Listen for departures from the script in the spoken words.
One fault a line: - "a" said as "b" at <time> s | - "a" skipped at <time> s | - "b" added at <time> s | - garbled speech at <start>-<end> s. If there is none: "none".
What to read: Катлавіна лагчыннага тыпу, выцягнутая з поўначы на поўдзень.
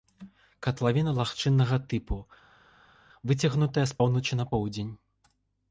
none